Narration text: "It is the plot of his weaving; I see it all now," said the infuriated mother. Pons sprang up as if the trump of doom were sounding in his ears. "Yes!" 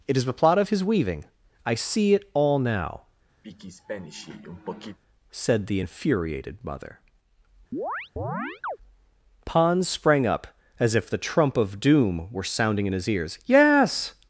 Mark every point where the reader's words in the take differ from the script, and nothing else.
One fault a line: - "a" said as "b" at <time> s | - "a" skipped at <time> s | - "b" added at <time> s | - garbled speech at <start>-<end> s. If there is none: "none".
none